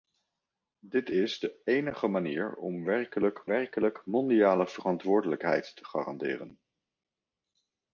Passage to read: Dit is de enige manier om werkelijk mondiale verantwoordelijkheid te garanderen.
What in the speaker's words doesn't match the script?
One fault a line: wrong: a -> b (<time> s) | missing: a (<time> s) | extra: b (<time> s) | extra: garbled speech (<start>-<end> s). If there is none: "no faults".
extra: werkelijk (3.5 s)